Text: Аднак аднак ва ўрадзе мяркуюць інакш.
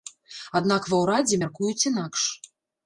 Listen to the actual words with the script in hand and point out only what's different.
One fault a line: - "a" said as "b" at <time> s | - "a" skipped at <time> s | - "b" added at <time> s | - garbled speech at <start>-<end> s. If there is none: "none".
- "аднак" skipped at 0.9 s